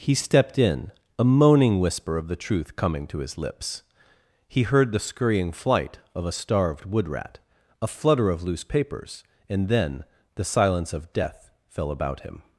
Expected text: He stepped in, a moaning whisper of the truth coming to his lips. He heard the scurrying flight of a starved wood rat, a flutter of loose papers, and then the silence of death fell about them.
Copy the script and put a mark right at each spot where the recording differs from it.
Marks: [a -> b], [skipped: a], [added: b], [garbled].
He stepped in, a moaning whisper of the truth coming to his lips. He heard the scurrying flight of a starved wood rat, a flutter of loose papers, and then the silence of death fell about [them. -> him]